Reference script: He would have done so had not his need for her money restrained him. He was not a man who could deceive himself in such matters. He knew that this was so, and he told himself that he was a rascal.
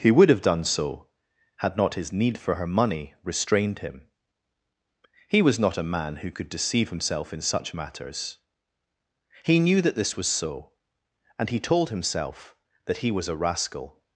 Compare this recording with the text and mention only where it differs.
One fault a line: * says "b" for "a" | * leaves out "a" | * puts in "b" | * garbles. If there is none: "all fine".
all fine